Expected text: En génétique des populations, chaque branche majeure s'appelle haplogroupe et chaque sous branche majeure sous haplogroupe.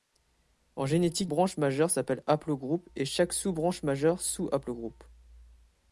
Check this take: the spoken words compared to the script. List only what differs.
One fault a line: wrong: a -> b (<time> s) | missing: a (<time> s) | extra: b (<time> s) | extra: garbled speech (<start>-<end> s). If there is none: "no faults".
missing: des populations chaque (1.3 s)